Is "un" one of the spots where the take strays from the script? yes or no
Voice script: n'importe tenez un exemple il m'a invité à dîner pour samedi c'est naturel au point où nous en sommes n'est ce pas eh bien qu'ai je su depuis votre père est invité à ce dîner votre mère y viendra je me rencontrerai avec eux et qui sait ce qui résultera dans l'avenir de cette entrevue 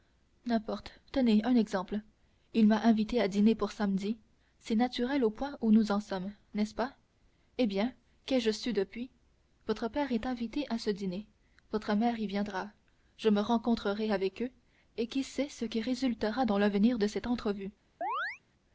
no